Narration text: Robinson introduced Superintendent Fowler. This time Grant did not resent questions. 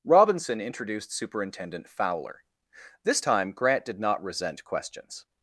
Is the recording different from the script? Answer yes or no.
no